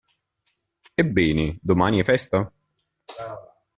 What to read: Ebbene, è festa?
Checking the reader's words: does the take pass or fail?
fail